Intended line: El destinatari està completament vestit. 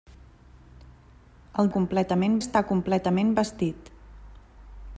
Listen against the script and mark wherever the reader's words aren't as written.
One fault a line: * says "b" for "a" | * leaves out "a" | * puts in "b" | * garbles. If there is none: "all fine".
* says "completament" for "destinatari"